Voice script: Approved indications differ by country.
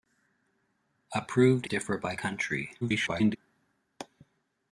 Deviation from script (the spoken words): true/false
true